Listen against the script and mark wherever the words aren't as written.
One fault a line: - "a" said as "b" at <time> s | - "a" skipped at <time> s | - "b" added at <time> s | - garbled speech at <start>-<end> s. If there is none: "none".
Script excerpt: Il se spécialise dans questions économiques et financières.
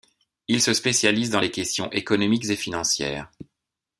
- "les" added at 1.4 s